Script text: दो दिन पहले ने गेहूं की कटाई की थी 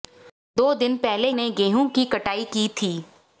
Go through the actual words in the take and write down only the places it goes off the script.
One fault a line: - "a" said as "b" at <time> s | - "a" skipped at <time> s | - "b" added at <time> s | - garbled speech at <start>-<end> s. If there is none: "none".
none